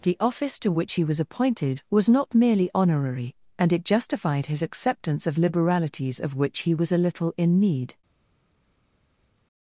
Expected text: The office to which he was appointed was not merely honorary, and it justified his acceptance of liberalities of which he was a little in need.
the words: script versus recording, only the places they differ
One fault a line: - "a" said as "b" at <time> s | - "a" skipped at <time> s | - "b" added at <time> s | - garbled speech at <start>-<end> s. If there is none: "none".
none